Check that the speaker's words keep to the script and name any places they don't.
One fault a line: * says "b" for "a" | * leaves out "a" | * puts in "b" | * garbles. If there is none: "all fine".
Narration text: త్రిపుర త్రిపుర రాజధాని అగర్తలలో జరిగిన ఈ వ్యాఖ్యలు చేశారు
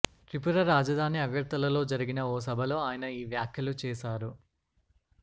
* leaves out "త్రిపుర"
* puts in "ఓ సభలో ఆయన"